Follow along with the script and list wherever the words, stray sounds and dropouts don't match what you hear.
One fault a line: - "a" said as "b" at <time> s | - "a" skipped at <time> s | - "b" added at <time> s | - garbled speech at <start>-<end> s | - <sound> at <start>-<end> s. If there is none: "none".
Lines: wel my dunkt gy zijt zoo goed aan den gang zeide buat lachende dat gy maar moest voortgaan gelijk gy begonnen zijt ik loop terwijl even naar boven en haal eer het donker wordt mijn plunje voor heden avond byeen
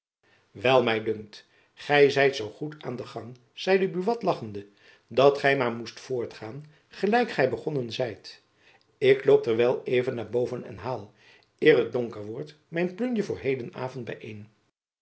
none